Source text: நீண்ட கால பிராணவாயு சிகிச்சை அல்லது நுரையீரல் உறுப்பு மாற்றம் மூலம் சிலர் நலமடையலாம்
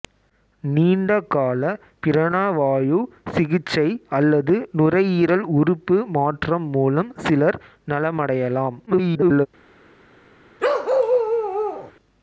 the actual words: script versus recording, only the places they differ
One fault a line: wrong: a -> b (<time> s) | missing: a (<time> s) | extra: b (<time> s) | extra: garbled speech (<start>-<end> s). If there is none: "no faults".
extra: garbled speech (8.9-9.5 s)